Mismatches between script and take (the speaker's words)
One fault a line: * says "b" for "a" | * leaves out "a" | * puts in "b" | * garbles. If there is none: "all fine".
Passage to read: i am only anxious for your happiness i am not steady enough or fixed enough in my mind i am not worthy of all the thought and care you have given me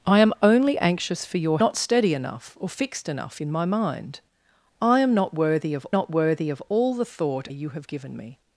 * leaves out "happiness i am"
* puts in "not worthy of"
* leaves out "and care"